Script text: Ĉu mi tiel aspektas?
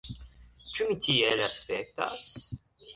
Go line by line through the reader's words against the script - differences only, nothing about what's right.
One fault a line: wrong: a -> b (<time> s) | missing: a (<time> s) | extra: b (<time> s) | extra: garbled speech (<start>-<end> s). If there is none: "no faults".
no faults